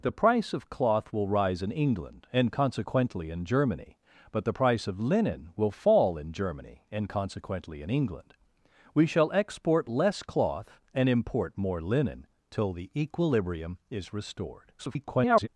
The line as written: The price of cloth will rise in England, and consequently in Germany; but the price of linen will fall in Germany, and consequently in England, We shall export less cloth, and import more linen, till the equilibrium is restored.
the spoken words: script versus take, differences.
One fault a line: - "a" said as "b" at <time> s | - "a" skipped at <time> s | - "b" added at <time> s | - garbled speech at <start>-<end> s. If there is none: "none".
- garbled speech at 14.8-15.5 s